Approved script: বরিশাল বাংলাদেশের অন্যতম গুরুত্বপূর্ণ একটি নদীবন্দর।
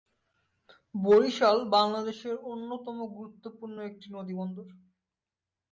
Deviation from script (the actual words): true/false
false